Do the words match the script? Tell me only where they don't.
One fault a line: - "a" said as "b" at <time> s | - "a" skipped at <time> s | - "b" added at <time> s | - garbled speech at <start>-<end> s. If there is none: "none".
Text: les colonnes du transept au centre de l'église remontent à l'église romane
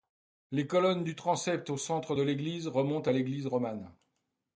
none